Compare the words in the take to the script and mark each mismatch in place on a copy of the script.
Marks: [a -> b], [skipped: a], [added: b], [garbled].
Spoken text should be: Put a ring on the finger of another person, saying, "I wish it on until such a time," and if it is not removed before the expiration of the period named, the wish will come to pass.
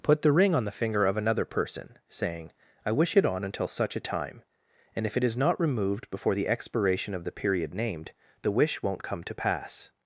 Put [a -> the] ring on the finger of another person, saying, "I wish it on until such a time," and if it is not removed before the expiration of the period named, the wish [will -> won't] come to pass.